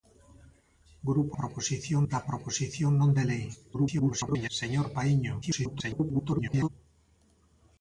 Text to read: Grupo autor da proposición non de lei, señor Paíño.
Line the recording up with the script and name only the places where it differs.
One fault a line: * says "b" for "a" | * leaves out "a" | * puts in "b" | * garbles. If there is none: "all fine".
* says "proposición" for "autor"
* garbles
* garbles